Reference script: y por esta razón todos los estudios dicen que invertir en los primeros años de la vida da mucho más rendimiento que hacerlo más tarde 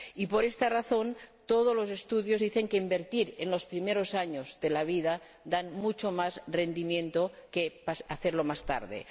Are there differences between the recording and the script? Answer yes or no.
no